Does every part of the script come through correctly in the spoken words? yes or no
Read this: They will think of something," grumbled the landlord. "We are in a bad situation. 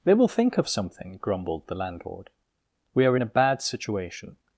yes